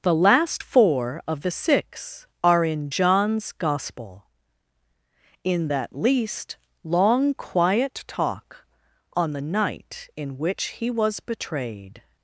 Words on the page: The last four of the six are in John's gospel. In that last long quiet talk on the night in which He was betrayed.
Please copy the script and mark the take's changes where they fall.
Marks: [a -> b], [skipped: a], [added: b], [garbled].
The last four of the six are in John's gospel. In that [last -> least] long quiet talk on the night in which He was betrayed.